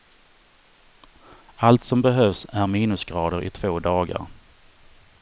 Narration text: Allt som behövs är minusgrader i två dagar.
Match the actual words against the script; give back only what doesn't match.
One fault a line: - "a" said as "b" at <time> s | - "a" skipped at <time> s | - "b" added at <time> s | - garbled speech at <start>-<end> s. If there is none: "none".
none